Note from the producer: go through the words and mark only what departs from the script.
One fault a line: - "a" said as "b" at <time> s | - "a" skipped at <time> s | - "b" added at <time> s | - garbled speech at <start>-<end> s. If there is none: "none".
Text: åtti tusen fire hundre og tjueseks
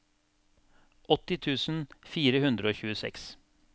none